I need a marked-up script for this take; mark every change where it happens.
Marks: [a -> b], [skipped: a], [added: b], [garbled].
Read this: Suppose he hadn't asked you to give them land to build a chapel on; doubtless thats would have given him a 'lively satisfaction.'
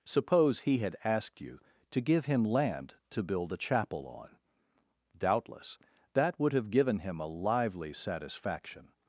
Suppose he [hadn't -> had] asked you to give [them -> him] land to build a chapel on; doubtless [thats -> that] would have given him a 'lively satisfaction.'